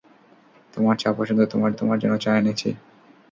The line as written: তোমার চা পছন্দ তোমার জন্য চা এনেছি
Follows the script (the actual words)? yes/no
no